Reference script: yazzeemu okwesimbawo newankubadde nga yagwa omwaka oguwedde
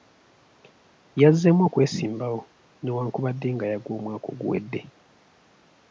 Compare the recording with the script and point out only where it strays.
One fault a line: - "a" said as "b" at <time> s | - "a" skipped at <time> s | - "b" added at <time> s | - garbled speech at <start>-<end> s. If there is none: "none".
none